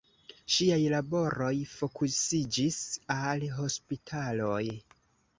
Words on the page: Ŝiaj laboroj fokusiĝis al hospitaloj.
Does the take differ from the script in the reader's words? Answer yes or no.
no